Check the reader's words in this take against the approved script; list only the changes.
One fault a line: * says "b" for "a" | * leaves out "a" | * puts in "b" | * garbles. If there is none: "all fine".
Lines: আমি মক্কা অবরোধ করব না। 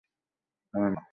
* leaves out "মক্কা অবরোধ করব"